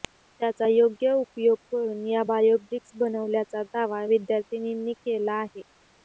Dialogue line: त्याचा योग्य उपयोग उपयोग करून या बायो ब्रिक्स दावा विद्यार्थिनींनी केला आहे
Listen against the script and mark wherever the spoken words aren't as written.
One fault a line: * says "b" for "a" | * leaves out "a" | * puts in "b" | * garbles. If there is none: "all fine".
* leaves out "उपयोग"
* puts in "बनवल्याचा"